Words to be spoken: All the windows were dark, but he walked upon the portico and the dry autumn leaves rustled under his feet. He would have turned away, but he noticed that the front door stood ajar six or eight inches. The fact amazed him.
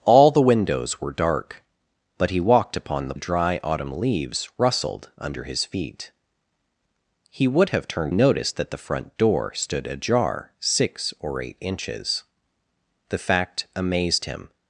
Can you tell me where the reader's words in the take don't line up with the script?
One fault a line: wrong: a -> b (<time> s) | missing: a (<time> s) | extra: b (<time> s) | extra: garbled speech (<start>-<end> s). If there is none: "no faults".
missing: portico and (3.1 s)
missing: away but he (8.1 s)